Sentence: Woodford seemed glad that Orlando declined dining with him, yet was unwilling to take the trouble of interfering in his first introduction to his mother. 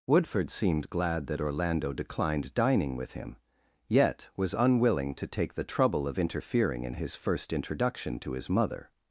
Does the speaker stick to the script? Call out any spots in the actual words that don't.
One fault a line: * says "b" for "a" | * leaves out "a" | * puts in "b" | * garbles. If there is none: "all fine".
all fine